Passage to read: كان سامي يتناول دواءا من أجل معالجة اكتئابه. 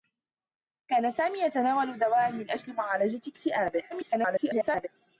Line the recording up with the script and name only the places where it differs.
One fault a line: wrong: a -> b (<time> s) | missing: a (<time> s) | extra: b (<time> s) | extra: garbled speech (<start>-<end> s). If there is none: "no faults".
extra: garbled speech (3.9-4.9 s)